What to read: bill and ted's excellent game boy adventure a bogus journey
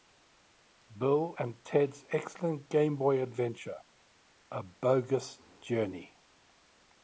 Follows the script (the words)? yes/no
yes